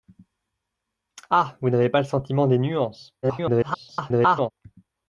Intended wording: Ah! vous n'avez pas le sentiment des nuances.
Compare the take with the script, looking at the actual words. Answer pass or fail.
fail